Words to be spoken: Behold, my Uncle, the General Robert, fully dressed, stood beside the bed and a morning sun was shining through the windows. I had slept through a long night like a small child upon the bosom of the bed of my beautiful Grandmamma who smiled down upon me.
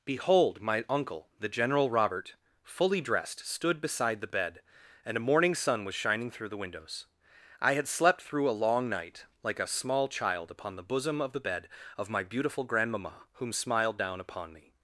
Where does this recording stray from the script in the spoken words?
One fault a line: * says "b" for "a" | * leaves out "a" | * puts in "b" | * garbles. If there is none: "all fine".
* says "whom" for "who"